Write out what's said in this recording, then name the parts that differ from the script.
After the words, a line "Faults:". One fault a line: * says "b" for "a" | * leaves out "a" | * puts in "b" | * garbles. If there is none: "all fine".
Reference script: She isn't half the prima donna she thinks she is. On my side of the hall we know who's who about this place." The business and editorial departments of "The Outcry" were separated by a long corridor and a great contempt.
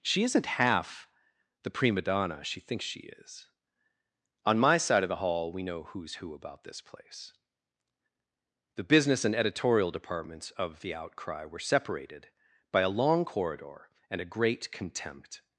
She isn't half the prima donna she thinks she is. On my side of the hall we know who's who about this place." The business and editorial departments of "The Outcry" were separated by a long corridor and a great contempt.
Faults:
all fine